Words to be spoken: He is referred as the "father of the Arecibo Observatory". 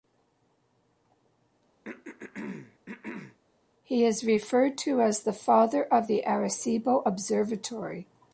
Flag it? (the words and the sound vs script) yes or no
yes